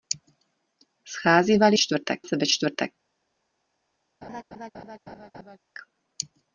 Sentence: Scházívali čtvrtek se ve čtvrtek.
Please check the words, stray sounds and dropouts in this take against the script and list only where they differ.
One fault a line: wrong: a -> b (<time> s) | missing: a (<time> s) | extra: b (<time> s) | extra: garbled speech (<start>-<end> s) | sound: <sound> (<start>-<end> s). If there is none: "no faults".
sound: laugh (4.2-5.6 s)